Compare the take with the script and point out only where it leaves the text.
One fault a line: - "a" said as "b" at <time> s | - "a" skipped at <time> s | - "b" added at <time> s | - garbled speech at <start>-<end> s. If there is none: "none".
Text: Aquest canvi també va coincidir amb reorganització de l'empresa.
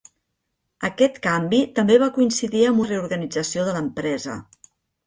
none